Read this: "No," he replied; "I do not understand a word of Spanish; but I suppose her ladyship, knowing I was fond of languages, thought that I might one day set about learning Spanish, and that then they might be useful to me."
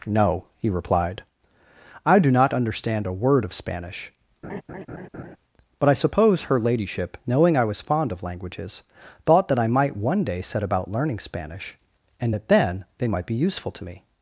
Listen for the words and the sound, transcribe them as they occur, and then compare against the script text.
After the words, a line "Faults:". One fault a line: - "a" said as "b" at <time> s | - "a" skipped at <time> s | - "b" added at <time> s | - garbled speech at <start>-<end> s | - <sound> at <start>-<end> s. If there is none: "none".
"No," he replied; "I do not understand a word of Spanish; but I suppose her ladyship, knowing I was fond of languages, thought that I might one day set about learning Spanish, and that then they might be useful to me."
Faults:
- laugh at 4.4-5.4 s